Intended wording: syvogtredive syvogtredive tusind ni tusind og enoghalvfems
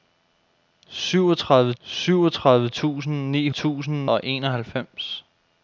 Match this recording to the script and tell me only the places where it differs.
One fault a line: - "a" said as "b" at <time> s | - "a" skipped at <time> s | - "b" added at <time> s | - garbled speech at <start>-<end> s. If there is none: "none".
none